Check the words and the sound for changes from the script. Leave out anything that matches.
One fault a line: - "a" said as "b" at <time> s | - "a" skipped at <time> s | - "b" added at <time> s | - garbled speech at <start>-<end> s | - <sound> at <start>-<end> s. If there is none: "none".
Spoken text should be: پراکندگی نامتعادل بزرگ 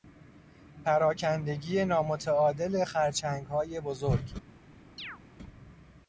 - "خرچنگهای" added at 2.9 s
- chirp at 5.0-5.2 s